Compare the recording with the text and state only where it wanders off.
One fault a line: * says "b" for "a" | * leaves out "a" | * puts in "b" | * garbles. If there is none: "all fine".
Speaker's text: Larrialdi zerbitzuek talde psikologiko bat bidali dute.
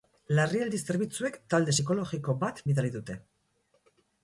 all fine